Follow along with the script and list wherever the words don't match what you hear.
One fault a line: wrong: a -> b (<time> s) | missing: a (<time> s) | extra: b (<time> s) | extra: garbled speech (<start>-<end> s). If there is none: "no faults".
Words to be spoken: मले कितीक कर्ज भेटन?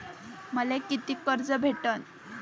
no faults